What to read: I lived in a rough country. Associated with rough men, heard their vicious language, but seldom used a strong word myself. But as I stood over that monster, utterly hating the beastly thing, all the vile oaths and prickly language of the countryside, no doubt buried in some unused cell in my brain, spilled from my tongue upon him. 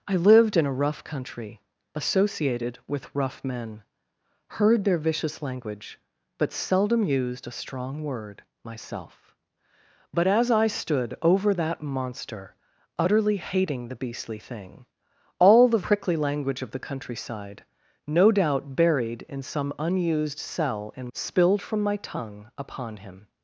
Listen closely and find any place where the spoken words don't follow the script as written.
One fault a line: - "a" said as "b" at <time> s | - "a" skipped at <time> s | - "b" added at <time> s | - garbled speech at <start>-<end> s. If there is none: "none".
- "vile oaths and" skipped at 15.8 s
- "my brain" skipped at 21.1 s